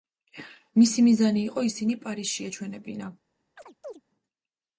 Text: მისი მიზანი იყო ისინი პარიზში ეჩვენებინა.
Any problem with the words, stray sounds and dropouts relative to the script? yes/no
yes